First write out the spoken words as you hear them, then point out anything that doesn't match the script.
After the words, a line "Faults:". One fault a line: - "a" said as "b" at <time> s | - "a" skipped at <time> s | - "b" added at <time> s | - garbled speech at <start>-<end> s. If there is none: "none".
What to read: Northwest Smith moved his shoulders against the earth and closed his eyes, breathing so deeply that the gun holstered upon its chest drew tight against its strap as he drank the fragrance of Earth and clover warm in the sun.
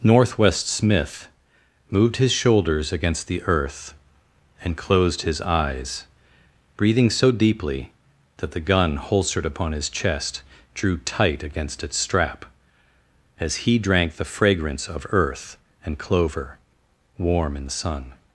Northwest Smith moved his shoulders against the earth and closed his eyes, breathing so deeply that the gun holstered upon his chest drew tight against its strap as he drank the fragrance of Earth and clover warm in the sun.
Faults:
- "its" said as "his" at 9.7 s